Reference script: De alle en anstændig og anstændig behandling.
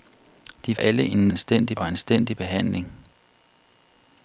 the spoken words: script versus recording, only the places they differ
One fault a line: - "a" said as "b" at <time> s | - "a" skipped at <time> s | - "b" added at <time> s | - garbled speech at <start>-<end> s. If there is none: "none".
none